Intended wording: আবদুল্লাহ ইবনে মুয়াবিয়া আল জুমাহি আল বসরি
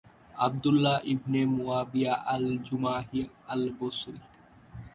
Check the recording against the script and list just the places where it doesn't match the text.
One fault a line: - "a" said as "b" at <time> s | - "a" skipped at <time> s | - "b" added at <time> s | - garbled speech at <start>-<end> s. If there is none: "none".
none